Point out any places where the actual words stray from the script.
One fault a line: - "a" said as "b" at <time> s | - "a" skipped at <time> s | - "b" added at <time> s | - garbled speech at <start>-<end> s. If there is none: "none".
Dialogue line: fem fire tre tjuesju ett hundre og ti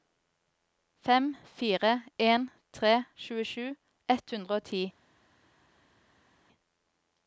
- "en" added at 2.2 s